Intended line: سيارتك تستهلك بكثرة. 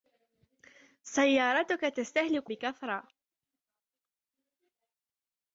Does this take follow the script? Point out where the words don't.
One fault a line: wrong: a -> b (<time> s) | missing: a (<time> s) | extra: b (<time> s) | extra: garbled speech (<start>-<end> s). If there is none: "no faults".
no faults